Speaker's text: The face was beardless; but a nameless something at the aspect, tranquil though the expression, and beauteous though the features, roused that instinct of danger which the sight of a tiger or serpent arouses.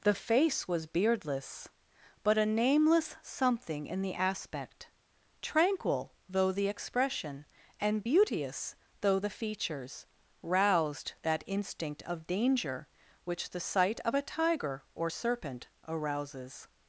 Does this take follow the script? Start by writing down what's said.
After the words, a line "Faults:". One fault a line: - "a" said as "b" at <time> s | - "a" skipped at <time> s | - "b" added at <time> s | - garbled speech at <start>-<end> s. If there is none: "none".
The face was beardless; but a nameless something in the aspect, tranquil though the expression, and beauteous though the features, roused that instinct of danger which the sight of a tiger or serpent arouses.
Faults:
- "at" said as "in" at 3.9 s